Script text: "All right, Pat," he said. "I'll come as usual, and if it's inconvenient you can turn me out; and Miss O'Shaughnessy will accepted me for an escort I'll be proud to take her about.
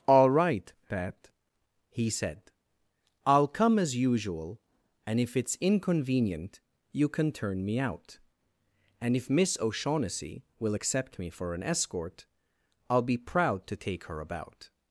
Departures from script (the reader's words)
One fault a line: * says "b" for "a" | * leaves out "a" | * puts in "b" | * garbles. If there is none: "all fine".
* puts in "if"
* says "accept" for "accepted"